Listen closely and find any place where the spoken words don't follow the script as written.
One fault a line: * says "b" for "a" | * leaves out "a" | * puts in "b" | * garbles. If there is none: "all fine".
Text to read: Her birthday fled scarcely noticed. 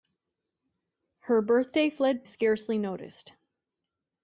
all fine